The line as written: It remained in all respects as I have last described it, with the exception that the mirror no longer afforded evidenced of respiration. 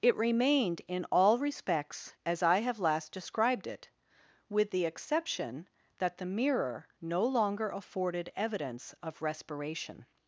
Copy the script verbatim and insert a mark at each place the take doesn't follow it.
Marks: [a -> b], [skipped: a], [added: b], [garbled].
It remained in all respects as I have last described it, with the exception that the mirror no longer afforded [evidenced -> evidence] of respiration.